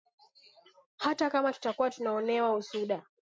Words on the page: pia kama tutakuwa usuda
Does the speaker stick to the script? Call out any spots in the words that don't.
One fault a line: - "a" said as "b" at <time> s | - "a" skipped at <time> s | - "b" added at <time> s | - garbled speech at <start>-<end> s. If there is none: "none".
- "pia" said as "hata" at 1.0 s
- "tunaonewa" added at 1.9 s